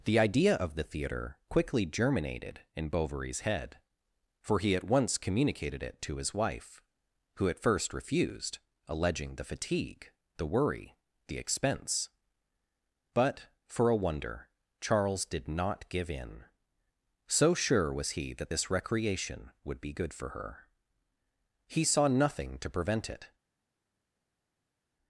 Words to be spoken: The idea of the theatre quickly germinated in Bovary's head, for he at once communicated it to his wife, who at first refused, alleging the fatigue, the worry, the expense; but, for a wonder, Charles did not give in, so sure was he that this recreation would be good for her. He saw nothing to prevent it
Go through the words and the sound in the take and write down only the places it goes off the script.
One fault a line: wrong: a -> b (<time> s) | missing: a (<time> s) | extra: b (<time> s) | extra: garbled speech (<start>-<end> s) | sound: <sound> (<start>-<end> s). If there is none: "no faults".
no faults